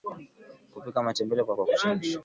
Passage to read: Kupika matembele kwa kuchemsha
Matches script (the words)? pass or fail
fail